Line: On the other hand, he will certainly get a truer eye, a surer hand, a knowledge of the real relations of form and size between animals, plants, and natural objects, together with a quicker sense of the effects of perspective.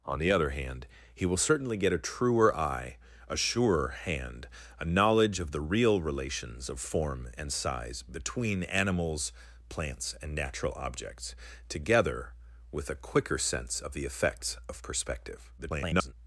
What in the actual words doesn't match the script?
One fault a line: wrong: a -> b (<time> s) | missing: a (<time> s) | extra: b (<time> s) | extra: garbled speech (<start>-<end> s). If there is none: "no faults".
extra: garbled speech (15.6-16.1 s)